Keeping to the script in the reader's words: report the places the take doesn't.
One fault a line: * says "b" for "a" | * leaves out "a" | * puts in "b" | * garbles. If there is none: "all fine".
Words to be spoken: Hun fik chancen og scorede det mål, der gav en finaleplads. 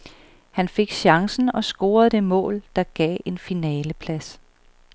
* says "Han" for "Hun"